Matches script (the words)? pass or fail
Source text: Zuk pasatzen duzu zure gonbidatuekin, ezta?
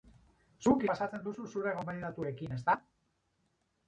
pass